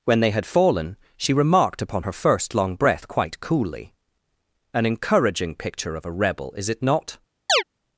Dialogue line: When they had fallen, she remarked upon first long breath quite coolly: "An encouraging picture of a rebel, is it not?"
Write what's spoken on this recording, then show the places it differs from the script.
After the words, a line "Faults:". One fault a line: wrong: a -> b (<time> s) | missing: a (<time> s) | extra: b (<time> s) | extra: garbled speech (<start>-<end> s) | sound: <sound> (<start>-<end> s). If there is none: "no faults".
When they had fallen, she remarked upon her first long breath quite coolly: "An encouraging picture of a rebel, is it not?"
Faults:
extra: her (2.0 s)
sound: chirp (7.5-7.6 s)